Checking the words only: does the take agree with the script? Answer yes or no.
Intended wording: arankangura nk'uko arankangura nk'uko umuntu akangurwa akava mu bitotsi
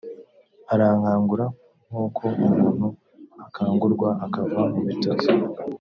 no